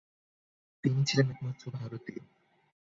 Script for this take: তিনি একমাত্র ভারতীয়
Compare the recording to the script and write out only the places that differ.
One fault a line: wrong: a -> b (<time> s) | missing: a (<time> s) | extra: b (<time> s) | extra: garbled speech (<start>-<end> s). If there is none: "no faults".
extra: ছিলেন (1.1 s)